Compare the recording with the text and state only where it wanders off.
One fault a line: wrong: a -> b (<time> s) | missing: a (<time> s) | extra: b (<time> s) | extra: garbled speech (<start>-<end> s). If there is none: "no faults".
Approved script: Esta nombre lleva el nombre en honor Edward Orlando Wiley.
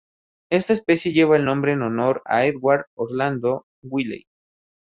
wrong: nombre -> especie (0.7 s)
extra: a (2.3 s)